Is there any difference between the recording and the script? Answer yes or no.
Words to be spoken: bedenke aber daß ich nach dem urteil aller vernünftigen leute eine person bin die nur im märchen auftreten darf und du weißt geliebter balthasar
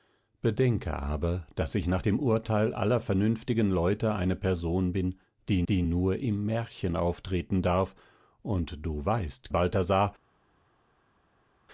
yes